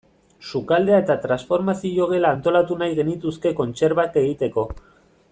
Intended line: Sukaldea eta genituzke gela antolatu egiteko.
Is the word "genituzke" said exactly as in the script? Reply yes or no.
no